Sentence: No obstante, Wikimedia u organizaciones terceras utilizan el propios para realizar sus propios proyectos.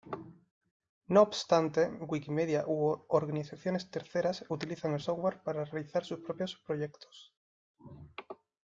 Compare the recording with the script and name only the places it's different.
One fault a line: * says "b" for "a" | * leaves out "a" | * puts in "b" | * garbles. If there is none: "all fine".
* says "software" for "propios"